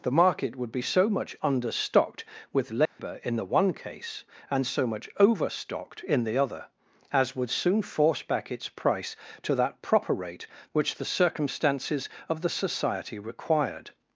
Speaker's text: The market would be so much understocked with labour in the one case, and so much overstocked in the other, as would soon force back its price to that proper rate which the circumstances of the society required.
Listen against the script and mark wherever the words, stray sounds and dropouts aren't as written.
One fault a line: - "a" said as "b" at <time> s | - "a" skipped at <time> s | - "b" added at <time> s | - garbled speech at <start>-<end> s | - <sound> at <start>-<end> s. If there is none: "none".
- dropout at 2.9-3.0 s